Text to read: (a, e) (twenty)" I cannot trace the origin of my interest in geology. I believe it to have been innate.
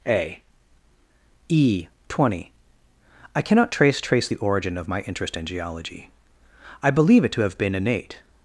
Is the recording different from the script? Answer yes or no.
yes